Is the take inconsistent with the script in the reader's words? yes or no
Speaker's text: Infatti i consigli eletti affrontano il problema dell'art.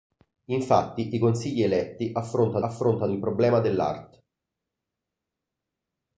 yes